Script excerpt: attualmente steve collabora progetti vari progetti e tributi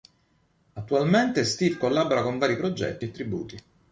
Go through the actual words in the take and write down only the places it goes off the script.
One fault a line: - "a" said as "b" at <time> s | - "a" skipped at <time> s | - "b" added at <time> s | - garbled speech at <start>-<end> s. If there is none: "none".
- "progetti" said as "con" at 2.2 s